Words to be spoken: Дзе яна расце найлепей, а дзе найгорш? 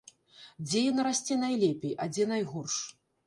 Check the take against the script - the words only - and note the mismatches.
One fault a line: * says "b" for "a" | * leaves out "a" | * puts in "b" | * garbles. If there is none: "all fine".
all fine